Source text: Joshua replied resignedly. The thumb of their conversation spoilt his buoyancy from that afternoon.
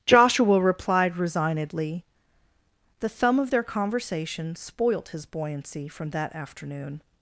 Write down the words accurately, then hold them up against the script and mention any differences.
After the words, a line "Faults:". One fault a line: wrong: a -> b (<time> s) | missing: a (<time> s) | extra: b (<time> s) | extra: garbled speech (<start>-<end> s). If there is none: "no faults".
Joshua replied resignedly. The thumb of their conversation spoilt his buoyancy from that afternoon.
Faults:
no faults